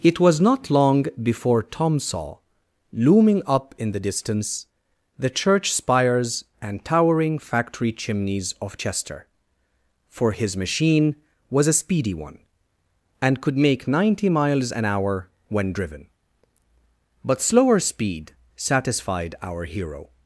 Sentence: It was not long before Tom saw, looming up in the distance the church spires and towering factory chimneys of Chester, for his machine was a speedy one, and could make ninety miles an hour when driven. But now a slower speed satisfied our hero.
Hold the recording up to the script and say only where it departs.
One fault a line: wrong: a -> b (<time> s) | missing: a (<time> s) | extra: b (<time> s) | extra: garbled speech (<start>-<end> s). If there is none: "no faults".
missing: now a (17.4 s)